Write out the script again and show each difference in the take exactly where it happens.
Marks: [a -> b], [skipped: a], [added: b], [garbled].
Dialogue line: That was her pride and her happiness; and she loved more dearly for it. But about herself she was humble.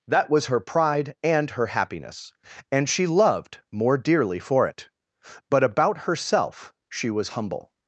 That was her pride and her happiness; and she loved more dearly for it. But about herself she was humble.